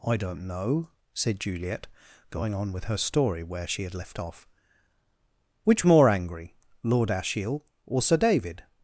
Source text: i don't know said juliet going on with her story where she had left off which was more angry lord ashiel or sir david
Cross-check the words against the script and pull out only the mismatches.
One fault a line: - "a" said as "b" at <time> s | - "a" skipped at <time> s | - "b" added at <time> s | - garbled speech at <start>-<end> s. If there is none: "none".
- "was" skipped at 5.8 s